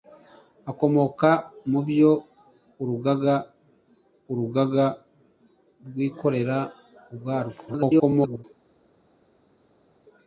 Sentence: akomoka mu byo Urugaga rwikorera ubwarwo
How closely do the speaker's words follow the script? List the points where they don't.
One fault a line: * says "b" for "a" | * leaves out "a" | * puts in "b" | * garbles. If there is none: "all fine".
* puts in "Urugaga"
* garbles